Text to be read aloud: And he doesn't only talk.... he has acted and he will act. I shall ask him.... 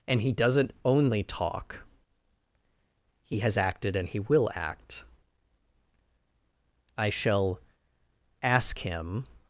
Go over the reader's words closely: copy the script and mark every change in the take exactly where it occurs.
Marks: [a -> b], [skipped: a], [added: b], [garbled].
And he doesn't only talk.... he has acted and he will act. I shall ask him....